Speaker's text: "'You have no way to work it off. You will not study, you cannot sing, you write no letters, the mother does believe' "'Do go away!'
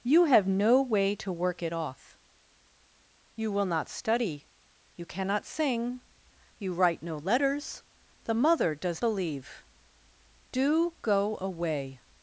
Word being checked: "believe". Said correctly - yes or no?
yes